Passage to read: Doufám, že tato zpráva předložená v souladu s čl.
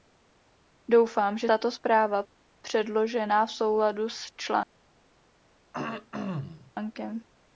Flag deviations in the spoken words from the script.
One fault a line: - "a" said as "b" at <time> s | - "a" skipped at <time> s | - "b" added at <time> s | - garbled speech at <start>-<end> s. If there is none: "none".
none